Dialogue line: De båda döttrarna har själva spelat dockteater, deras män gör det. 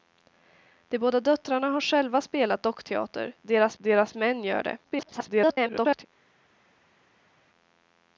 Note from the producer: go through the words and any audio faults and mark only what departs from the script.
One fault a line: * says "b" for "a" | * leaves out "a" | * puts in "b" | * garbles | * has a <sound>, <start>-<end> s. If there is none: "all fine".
* puts in "deras"
* garbles